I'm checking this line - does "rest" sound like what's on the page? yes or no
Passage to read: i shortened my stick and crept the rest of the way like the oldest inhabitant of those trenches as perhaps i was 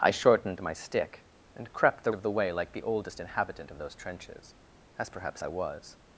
no